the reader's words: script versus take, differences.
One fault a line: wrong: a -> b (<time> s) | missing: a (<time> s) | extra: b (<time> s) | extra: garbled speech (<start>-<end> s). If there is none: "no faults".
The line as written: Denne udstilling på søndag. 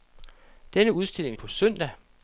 no faults